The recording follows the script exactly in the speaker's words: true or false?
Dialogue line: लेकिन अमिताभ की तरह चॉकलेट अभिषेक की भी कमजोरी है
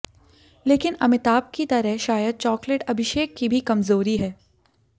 false